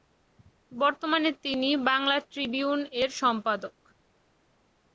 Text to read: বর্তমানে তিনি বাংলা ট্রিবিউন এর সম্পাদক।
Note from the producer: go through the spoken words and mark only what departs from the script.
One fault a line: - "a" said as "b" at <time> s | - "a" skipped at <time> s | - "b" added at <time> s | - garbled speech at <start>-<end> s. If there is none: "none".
none